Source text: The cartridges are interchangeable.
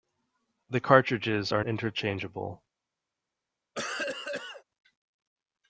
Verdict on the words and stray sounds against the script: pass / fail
fail